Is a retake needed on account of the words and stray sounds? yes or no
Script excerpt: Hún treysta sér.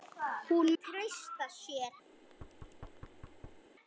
yes